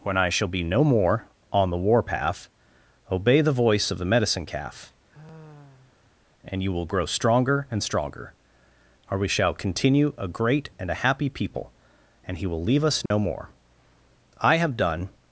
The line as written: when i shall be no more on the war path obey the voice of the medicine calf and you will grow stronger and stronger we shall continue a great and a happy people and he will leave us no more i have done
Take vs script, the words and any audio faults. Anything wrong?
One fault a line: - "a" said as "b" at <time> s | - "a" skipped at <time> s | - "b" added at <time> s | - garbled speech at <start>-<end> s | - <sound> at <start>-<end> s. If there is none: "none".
- sigh at 5.1-6.3 s
- "or" added at 9.1 s
- dropout at 13.1-13.1 s